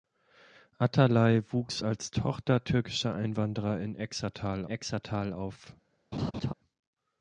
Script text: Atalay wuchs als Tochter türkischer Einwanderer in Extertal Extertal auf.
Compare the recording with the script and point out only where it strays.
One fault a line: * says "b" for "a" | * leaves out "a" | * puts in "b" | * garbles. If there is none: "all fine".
all fine